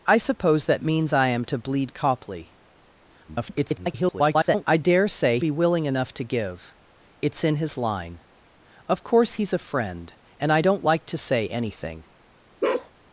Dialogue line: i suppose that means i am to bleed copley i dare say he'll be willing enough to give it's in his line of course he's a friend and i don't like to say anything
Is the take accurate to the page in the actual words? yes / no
no